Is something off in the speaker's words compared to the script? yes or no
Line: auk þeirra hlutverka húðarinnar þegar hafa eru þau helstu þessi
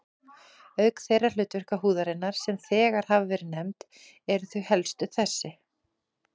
yes